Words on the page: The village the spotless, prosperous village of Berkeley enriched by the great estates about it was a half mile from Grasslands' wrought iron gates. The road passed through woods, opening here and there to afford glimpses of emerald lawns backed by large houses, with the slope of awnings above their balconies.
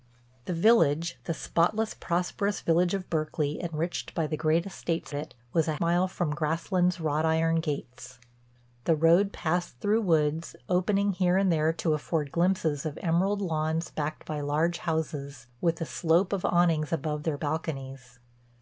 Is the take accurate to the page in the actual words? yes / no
no